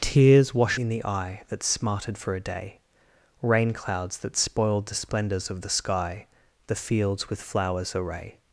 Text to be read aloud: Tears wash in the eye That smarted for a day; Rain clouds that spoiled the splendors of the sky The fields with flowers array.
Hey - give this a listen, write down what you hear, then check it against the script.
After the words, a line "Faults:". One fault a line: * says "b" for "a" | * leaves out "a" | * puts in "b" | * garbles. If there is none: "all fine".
Tears wash in the eye That smarted for a day; Rain clouds that spoiled the splendors of the sky The fields with flowers array.
Faults:
all fine